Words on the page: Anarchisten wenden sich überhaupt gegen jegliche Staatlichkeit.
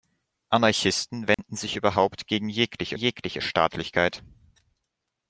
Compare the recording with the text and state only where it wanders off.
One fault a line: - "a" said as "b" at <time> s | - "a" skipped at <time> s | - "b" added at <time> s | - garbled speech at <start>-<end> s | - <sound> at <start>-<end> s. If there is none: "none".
- dropout at 1.3-1.4 s
- "jegliche" added at 2.9 s